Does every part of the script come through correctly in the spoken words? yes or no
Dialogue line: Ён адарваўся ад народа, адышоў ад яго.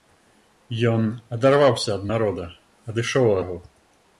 no